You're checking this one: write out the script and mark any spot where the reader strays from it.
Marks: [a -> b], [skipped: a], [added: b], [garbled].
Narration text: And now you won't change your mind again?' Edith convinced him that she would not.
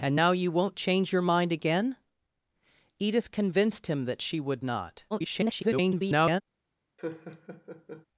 And now you won't change your mind again?' Edith convinced him that she would not. [garbled]